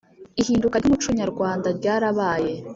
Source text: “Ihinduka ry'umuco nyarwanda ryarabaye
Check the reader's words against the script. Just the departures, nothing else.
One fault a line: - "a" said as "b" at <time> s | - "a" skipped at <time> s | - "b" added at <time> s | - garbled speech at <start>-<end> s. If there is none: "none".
none